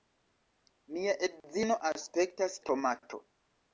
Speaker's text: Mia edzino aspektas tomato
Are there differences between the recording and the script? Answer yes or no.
no